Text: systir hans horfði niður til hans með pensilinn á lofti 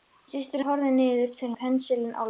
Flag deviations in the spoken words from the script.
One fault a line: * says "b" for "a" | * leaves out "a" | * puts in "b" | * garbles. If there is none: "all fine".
* leaves out "hans"
* leaves out "hans með"